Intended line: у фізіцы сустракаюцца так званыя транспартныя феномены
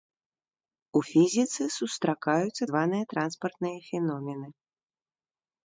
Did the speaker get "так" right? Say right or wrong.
wrong